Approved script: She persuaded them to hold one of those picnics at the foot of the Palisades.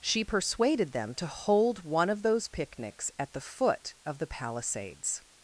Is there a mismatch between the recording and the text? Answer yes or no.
no